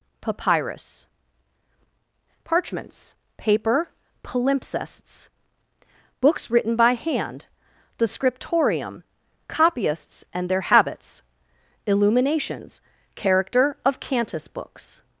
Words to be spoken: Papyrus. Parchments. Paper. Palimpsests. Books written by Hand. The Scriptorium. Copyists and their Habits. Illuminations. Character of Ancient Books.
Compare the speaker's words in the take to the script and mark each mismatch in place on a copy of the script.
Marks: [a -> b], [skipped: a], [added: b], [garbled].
Papyrus. Parchments. Paper. Palimpsests. Books written by Hand. The Scriptorium. Copyists and their Habits. Illuminations. Character of [Ancient -> Cantus] Books.